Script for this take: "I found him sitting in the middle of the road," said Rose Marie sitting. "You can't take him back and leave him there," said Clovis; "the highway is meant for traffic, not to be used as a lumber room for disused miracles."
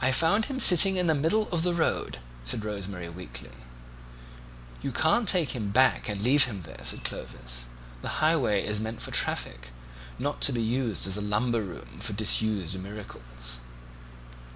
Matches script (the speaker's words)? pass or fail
fail